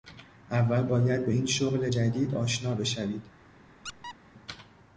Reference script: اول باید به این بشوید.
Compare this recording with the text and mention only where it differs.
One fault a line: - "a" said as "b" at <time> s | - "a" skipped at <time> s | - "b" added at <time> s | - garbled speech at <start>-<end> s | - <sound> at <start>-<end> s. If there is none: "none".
- "شغل جدید آشنا" added at 1.4 s
- squeak at 3.8-4.2 s